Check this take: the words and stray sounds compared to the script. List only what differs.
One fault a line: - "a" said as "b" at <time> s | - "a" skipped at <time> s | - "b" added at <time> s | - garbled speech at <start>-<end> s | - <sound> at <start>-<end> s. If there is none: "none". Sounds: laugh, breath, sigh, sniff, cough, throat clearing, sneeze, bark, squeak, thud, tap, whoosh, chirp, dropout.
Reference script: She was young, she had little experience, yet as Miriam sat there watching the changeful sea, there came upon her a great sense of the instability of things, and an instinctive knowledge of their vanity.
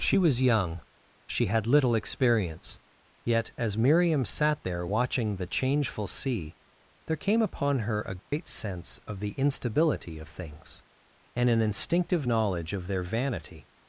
- dropout at 8.2-8.3 s